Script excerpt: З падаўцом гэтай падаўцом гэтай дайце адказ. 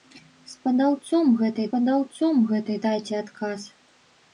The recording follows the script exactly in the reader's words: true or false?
true